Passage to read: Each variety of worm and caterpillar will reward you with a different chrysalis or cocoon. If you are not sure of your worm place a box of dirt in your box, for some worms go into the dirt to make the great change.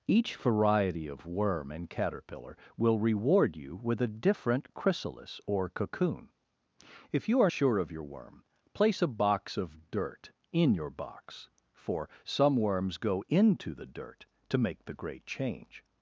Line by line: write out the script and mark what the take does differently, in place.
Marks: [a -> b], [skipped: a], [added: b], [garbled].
Each variety of worm and caterpillar will reward you with a different chrysalis or cocoon. If you are [skipped: not] sure of your worm place a box of dirt in your box, for some worms go into the dirt to make the great change.